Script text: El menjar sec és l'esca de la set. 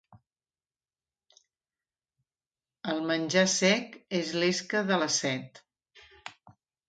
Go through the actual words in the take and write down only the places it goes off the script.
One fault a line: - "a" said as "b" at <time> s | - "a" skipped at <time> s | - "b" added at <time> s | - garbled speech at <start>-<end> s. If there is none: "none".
none